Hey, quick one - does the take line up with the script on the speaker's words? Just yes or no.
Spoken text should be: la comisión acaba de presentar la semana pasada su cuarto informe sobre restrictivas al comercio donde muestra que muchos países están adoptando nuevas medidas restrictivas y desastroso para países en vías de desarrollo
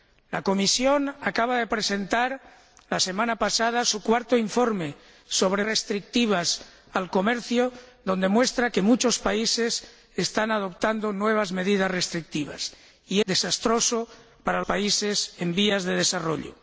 yes